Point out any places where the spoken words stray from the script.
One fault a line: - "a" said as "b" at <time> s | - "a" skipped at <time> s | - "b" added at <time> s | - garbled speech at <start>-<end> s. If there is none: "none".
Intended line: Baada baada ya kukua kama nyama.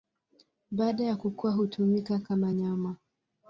- "baada" skipped at 1.0 s
- "hutumika" added at 1.5 s